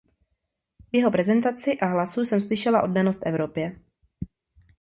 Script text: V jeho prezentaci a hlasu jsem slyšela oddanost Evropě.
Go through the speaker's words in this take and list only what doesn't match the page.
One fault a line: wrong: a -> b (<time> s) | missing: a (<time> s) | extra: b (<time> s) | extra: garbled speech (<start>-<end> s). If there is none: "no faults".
no faults